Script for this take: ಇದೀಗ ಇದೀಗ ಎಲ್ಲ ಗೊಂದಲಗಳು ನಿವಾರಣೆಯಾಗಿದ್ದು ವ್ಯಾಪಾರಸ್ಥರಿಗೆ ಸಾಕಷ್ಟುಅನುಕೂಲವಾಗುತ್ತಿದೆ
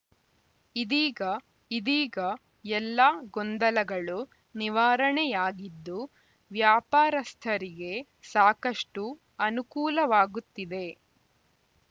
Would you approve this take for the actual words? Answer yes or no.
yes